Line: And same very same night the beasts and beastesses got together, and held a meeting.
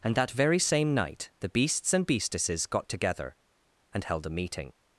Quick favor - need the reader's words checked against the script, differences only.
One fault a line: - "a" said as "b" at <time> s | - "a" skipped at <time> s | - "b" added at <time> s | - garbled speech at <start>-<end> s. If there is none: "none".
- "same" said as "that" at 0.1 s